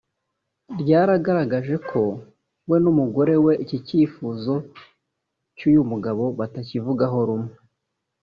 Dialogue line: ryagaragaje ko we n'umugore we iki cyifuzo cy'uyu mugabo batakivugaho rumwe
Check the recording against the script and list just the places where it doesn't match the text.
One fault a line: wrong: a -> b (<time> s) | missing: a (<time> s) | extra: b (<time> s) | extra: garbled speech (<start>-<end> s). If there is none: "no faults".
no faults